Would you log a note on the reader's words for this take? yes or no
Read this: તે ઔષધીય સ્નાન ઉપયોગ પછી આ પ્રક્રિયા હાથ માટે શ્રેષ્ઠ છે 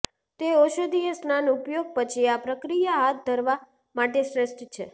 yes